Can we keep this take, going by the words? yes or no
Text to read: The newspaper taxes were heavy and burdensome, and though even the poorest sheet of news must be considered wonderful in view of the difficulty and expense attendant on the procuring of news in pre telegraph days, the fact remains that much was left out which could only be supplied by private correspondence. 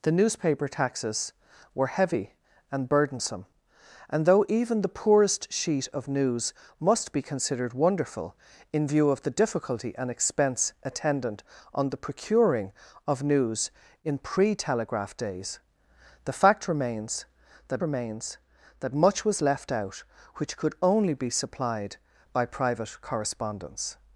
no